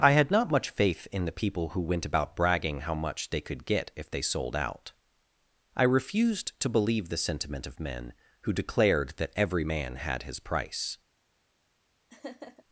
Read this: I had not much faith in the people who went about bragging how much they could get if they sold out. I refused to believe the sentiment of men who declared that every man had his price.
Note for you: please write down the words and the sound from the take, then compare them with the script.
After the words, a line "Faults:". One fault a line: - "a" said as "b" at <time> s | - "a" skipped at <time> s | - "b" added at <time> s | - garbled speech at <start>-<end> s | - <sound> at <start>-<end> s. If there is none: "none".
I had not much faith in the people who went about bragging how much they could get if they sold out. I refused to believe the sentiment of men who declared that every man had his price.
Faults:
- laugh at 12.1-12.6 s